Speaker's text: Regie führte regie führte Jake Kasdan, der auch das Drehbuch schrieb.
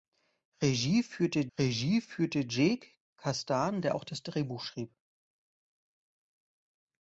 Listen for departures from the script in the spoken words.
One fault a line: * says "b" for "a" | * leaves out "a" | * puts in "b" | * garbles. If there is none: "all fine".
all fine